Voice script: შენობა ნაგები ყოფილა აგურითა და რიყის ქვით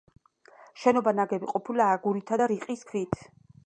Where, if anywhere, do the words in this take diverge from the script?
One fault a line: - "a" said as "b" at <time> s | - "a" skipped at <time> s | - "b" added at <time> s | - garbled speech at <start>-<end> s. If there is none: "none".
none